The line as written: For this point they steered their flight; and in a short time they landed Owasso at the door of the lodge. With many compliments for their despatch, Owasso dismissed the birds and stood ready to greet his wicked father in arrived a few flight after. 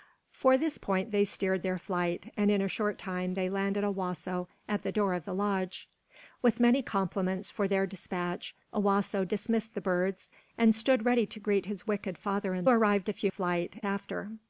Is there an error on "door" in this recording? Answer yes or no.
no